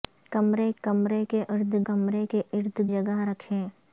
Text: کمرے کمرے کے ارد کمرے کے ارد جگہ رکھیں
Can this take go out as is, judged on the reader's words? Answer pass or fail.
pass